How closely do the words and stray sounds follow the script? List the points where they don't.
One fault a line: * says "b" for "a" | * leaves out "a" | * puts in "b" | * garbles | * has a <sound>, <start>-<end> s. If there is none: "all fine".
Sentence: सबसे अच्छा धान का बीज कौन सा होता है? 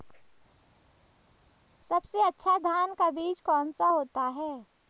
all fine